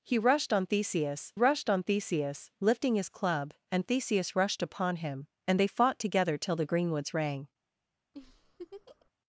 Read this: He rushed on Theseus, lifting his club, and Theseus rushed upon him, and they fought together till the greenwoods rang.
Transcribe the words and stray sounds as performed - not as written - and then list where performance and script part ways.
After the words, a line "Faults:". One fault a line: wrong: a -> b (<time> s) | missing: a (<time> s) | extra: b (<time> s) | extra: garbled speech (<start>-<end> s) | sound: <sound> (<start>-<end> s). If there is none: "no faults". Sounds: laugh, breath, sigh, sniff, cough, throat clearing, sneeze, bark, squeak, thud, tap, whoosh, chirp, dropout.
He rushed on Theseus rushed on Theseus, lifting his club, and Theseus rushed upon him, and they fought together till the greenwoods rang.
Faults:
extra: rushed on Theseus (1.3 s)
sound: laugh (8.1-9.1 s)